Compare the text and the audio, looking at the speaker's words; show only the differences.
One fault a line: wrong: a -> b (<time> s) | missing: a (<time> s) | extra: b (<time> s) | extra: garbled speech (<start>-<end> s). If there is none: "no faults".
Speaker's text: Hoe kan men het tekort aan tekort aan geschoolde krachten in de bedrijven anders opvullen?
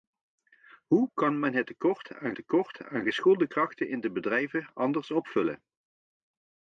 no faults